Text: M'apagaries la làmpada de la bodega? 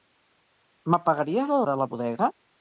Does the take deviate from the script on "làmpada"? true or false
true